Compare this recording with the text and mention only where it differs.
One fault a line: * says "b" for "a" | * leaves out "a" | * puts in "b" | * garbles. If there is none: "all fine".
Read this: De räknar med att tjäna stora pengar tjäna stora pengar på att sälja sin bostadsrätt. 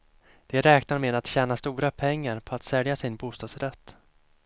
* leaves out "tjäna stora pengar"